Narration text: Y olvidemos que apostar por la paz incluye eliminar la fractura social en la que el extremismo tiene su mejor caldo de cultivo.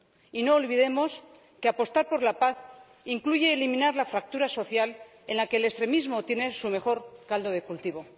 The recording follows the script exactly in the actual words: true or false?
false